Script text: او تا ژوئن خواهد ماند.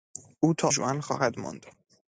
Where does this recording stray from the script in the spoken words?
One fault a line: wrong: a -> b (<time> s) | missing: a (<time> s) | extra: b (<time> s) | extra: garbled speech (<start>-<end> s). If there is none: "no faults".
no faults